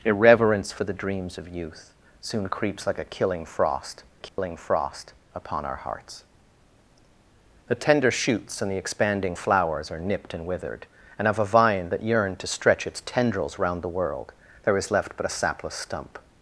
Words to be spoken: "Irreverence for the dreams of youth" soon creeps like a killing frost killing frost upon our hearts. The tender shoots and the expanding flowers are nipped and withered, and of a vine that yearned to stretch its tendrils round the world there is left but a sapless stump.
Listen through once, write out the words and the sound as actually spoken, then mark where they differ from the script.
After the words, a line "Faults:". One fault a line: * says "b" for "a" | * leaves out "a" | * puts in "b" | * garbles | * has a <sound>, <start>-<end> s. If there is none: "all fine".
"Irreverence for the dreams of youth" soon creeps like a killing frost killing frost upon our hearts. The tender shoots and the expanding flowers are nipped and withered, and of a vine that yearned to stretch its tendrils round the world there is left but a sapless stump.
Faults:
* has a dropout, 4.3-4.4 s